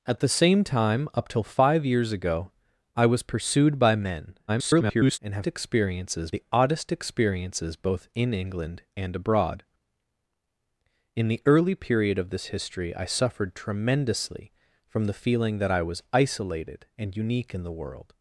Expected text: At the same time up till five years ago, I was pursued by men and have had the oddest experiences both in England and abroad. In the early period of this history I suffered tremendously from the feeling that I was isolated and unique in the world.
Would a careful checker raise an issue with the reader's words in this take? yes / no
yes